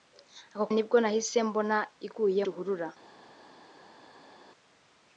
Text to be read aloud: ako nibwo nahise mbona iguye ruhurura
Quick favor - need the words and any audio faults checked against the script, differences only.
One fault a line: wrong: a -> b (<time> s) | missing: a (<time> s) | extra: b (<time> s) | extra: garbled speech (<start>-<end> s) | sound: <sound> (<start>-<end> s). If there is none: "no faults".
no faults